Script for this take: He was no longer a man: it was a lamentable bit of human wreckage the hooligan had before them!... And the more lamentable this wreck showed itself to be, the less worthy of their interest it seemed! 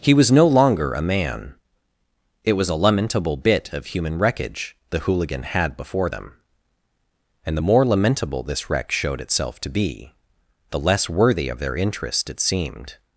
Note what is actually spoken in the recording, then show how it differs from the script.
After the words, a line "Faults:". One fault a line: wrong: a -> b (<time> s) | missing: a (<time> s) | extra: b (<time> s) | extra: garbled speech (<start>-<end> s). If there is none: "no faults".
He was no longer a man: it was a lamentable bit of human wreckage the hooligan had before them!... And the more lamentable this wreck showed itself to be, the less worthy of their interest it seemed!
Faults:
no faults